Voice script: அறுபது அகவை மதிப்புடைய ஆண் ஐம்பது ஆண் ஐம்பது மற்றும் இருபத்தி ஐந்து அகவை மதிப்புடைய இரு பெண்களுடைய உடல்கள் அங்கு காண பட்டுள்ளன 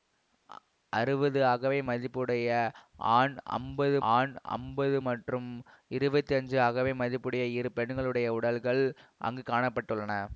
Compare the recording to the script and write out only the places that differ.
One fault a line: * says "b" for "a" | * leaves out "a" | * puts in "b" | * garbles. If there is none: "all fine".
all fine